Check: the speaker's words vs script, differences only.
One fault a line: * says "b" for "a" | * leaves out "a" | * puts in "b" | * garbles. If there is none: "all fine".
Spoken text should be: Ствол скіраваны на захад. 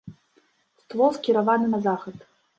all fine